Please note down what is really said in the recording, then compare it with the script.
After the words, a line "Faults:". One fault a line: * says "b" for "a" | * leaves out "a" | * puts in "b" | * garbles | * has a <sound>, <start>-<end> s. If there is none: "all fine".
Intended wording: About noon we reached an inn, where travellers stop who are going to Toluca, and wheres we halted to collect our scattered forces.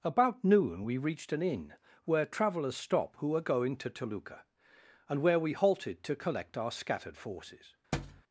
About noon we reached an inn, where travellers stop who are going to Toluca, and where we halted to collect our scattered forces.
Faults:
* says "where" for "wheres"
* has a thud, 7.9-8.2 s